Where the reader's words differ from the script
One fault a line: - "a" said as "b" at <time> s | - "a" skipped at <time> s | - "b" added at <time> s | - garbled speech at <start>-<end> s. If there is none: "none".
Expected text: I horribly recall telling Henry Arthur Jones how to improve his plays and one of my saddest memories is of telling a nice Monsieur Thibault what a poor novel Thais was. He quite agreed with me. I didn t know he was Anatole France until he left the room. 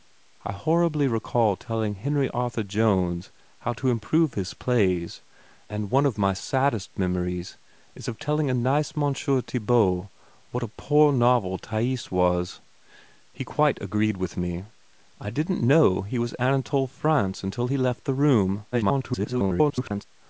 - garbled speech at 18.7-20.0 s